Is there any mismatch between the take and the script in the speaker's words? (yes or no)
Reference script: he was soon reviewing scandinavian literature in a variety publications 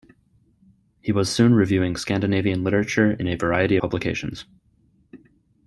no